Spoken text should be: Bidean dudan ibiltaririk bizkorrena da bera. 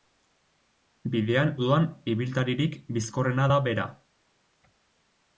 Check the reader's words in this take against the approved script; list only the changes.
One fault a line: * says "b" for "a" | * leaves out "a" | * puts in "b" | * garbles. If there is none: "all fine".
all fine